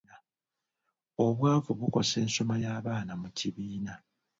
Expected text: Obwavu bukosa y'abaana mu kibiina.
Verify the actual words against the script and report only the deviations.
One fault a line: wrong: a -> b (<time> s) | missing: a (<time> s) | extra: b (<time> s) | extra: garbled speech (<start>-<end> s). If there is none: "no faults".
extra: ensoma (2.2 s)